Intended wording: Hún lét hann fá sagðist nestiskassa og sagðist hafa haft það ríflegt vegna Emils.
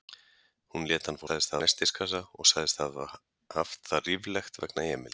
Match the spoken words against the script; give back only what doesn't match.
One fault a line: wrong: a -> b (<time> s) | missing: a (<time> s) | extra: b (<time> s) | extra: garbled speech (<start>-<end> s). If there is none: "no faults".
no faults